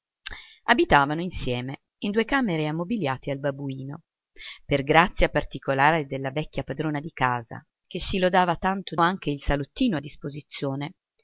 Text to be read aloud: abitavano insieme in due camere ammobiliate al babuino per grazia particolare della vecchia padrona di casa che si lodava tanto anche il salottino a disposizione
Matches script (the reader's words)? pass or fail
pass